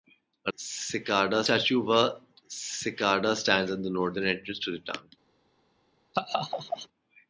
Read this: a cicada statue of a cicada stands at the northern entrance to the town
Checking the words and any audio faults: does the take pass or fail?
fail